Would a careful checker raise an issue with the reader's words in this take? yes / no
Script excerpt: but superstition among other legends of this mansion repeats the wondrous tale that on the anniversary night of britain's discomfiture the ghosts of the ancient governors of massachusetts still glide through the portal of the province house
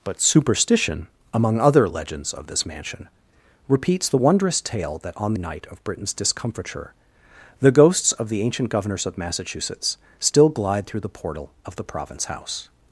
yes